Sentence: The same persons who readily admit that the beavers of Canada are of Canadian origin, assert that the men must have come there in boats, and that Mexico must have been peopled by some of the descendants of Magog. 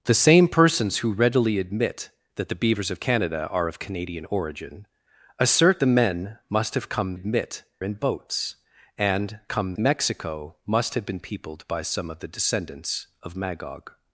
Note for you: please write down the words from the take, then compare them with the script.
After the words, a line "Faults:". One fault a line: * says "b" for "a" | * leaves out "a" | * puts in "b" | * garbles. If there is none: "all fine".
The same persons who readily admit that the beavers of Canada are of Canadian origin, assert the men must have come admit in boats, and come Mexico must have been peopled by some of the descendants of Magog.
Faults:
* leaves out "that"
* says "admit" for "there"
* says "come" for "that"